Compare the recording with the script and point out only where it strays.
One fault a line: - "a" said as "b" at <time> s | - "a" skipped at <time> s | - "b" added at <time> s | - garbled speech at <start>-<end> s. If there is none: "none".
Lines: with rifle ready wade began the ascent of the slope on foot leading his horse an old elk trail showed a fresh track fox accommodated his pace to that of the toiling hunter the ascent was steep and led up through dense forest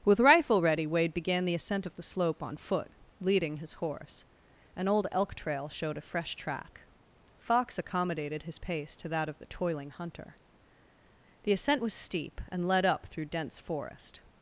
none